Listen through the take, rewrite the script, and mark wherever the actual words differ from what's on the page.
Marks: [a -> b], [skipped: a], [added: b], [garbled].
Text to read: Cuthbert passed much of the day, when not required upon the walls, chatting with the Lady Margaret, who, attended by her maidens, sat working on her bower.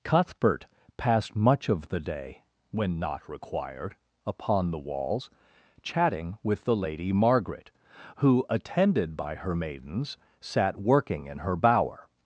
Cuthbert passed much of the day, when not required upon the walls, chatting with the Lady Margaret, who, attended by her maidens, sat working [on -> in] her bower.